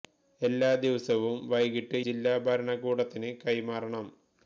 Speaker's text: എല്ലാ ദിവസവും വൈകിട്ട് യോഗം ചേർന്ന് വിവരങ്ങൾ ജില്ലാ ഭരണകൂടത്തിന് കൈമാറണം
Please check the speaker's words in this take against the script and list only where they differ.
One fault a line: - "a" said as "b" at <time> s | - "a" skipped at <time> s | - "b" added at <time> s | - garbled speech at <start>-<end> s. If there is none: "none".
- "യോഗം ചേർന്ന് വിവരങ്ങൾ" skipped at 2.0 s